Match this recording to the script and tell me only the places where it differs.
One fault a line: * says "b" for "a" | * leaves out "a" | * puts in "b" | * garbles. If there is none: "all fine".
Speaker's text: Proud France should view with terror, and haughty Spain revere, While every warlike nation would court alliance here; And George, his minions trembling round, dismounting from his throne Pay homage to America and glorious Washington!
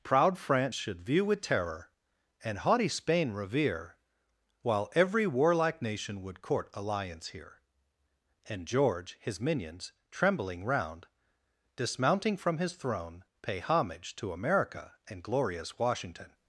all fine